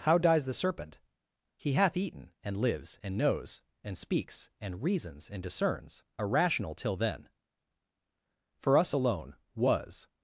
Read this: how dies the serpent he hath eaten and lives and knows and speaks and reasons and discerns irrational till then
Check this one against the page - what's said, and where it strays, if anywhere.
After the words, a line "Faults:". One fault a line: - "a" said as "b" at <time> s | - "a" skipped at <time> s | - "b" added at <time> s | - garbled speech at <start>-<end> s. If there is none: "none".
how dies the serpent he hath eaten and lives and knows and speaks and reasons and discerns irrational till then for us alone was
Faults:
- "for us alone was" added at 8.6 s